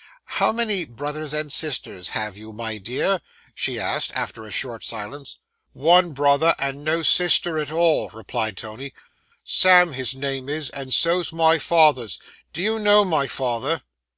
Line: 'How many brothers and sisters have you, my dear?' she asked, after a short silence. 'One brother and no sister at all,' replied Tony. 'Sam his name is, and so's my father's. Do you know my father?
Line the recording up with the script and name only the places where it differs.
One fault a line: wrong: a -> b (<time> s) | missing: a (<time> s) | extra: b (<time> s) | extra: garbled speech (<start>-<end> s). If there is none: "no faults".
no faults